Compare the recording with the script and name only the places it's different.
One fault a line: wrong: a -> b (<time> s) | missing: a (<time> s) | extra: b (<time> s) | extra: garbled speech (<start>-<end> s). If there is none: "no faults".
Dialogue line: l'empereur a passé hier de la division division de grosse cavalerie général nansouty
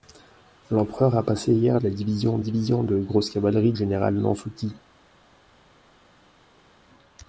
no faults